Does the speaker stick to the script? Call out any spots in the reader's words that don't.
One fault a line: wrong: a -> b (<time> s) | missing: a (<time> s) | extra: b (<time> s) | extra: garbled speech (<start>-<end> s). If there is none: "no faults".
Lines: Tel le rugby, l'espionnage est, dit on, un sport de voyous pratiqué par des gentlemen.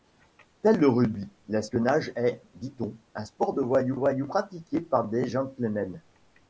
extra: voyous (3.9 s)